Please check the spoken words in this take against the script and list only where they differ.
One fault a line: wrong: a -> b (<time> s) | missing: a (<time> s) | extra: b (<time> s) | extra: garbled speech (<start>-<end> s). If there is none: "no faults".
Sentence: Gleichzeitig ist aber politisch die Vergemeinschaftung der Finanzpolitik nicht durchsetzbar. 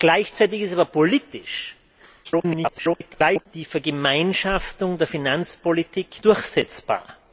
extra: garbled speech (2.2-3.5 s)
missing: nicht (6.2 s)